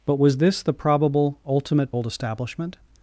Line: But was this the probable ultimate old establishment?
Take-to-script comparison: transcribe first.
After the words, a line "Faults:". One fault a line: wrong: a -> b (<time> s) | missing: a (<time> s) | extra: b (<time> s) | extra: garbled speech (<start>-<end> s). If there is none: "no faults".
But was this the probable ultimate old establishment?
Faults:
no faults